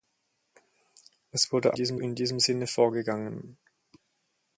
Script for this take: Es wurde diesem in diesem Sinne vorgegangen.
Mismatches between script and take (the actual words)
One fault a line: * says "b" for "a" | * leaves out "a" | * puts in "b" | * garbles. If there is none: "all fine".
all fine